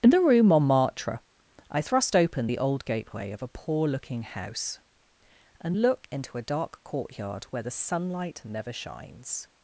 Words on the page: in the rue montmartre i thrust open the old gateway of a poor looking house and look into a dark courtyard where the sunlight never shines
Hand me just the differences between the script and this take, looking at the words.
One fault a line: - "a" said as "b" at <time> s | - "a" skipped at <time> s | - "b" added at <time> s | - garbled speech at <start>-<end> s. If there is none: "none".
none